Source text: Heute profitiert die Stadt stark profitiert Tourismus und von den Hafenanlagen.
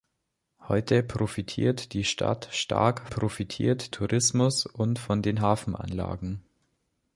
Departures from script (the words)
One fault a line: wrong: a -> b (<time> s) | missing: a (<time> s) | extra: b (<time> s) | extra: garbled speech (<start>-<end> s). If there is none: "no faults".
no faults